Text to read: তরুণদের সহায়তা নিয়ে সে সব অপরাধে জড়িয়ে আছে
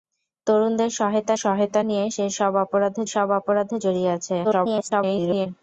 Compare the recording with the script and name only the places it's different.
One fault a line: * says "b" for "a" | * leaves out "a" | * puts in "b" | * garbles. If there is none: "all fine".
* puts in "সহায়তা"
* puts in "সব অপরাধে"
* garbles